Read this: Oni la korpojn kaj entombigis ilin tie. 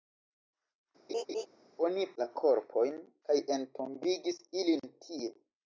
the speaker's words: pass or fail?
pass